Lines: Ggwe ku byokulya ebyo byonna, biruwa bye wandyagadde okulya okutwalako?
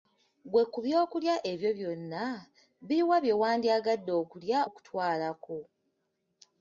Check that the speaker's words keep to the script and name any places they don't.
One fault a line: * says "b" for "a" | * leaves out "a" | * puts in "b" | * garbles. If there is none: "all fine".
all fine